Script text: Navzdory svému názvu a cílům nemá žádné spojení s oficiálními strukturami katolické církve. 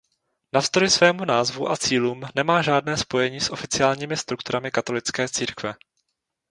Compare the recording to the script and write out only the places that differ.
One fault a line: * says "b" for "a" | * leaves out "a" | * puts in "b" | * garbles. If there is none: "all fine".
all fine